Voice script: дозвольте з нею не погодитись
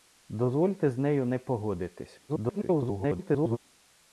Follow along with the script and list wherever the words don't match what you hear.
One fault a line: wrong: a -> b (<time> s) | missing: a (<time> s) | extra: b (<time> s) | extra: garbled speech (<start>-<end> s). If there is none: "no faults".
extra: garbled speech (2.3-3.6 s)